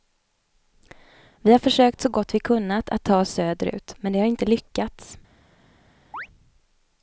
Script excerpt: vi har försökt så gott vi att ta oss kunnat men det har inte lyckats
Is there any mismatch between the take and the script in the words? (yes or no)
yes